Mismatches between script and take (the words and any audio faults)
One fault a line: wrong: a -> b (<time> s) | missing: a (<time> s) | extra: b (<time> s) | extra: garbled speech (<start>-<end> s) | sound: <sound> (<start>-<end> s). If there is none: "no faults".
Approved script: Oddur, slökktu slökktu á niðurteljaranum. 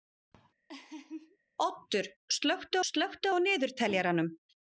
sound: laugh (0.7-1.4 s)